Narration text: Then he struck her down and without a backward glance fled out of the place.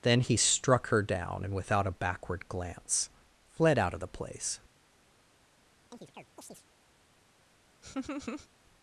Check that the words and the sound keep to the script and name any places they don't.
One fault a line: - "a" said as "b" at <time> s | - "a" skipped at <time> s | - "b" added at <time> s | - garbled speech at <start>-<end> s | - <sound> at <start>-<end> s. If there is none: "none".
- chirp at 5.9-6.7 s
- laugh at 7.8-8.5 s